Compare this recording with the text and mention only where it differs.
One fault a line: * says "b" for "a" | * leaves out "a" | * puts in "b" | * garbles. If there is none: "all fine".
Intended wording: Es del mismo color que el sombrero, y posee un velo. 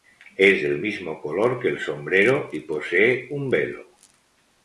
all fine